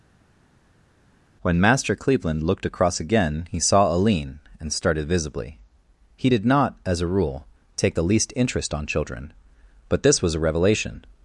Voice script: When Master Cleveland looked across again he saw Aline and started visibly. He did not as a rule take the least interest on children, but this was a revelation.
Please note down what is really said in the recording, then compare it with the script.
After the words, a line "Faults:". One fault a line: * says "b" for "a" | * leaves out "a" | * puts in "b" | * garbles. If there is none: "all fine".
When Master Cleveland looked across again he saw Aline and started visibly. He did not as a rule take the least interest on children, but this was a revelation.
Faults:
all fine